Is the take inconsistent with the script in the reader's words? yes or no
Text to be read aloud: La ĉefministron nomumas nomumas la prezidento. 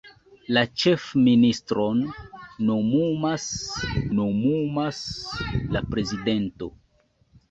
no